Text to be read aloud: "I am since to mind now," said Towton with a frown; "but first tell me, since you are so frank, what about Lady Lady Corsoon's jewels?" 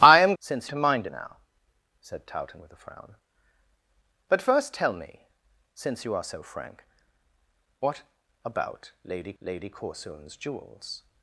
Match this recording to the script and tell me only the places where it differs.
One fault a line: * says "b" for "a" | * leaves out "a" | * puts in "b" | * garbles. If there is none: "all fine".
all fine